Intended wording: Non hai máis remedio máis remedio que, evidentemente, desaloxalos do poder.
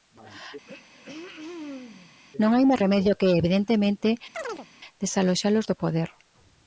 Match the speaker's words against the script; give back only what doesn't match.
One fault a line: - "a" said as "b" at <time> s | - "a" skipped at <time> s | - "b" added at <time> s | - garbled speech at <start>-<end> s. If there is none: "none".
- "máis remedio" skipped at 3.2 s